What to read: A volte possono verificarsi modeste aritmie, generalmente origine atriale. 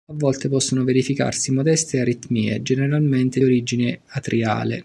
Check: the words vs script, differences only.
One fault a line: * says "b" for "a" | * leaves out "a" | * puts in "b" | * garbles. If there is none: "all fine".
all fine